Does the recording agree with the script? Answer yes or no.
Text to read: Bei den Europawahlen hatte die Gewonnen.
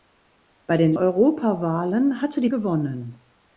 yes